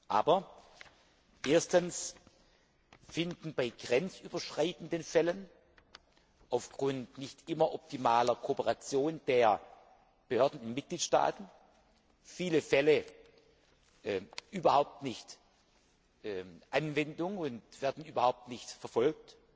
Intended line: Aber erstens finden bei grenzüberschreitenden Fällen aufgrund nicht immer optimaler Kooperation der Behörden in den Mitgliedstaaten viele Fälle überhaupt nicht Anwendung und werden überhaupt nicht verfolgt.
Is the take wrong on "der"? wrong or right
right